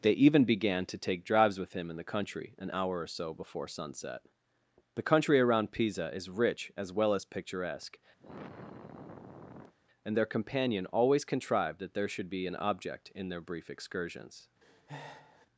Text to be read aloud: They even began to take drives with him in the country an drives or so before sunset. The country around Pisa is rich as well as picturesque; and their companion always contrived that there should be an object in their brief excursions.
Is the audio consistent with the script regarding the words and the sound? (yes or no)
no